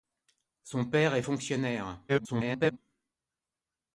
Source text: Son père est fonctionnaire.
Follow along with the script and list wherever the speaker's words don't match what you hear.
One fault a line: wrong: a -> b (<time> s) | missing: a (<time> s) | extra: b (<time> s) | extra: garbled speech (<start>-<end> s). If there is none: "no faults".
extra: garbled speech (2.1-2.8 s)